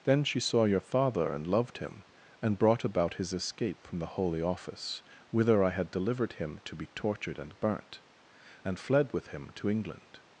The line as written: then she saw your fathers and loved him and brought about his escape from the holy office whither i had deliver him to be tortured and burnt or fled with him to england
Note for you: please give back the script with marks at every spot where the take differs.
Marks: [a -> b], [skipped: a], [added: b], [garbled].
then she saw your [fathers -> father] and loved him and brought about his escape from the holy office whither i had [deliver -> delivered] him to be tortured and burnt [or -> and] fled with him to england